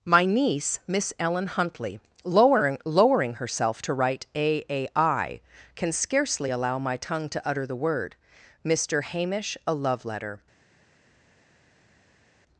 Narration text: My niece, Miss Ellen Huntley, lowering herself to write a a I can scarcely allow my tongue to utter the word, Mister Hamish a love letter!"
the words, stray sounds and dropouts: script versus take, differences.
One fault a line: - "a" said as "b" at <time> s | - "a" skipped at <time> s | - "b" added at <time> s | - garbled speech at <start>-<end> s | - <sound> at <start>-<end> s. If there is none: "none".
- "lowering" added at 2.8 s